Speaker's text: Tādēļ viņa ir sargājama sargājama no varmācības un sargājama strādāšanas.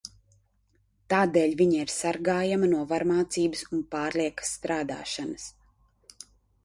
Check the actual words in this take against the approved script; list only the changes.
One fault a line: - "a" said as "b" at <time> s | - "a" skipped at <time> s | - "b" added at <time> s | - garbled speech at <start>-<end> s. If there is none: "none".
- "sargājama" skipped at 2.7 s
- "sargājama" said as "pārliekas" at 4.0 s